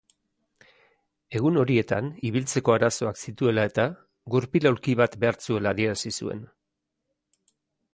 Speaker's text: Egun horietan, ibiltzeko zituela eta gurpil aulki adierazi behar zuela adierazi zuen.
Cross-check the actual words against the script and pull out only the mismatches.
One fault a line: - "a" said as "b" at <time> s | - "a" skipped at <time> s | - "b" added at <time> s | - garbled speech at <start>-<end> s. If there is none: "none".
- "arazoak" added at 2.7 s
- "adierazi" said as "bat" at 5.0 s